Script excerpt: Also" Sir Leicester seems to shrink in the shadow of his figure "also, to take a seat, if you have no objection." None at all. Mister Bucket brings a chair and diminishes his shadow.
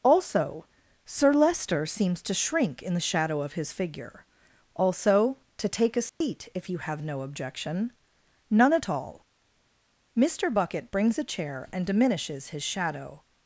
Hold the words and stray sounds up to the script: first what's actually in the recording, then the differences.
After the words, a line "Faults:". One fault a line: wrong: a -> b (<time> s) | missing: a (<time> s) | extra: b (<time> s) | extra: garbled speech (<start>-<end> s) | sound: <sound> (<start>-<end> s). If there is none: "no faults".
Also" Sir Leicester seems to shrink in the shadow of his figure "also, to take a seat, if you have no objection." None at all. Mister Bucket brings a chair and diminishes his shadow.
Faults:
sound: dropout (6.1-6.2 s)